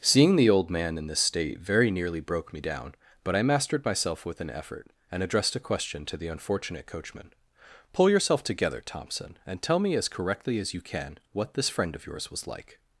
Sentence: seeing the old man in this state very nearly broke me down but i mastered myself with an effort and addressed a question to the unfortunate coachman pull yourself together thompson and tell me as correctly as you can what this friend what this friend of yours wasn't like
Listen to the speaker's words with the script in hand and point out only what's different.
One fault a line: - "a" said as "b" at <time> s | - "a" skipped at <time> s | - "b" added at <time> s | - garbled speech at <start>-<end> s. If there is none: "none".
- "what this friend" skipped at 11.9 s
- "wasn't" said as "was" at 12.3 s